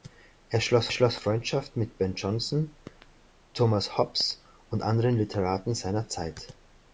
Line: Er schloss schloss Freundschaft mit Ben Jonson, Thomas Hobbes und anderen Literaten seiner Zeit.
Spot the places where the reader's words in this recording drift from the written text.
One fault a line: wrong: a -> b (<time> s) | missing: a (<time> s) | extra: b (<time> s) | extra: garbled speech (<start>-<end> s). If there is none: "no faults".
no faults